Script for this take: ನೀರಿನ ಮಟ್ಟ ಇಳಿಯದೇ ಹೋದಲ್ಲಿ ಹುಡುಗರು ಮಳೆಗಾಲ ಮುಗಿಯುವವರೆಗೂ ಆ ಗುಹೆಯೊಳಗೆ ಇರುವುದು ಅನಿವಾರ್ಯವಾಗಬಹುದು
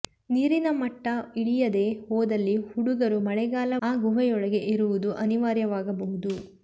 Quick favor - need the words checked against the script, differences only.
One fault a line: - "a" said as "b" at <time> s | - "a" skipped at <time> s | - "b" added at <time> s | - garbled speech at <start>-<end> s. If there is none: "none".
- "ಮುಗಿಯುವವರೆಗೂ" skipped at 3.7 s